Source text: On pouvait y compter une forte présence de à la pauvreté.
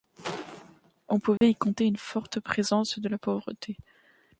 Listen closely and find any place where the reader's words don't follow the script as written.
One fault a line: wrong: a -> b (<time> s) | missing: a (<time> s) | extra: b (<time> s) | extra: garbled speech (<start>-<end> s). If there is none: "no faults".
no faults